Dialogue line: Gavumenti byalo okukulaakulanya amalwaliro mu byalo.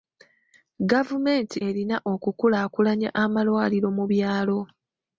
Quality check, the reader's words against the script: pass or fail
fail